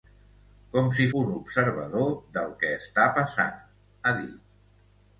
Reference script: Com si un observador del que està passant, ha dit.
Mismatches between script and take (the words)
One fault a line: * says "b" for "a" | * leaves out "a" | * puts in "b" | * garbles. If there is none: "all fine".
all fine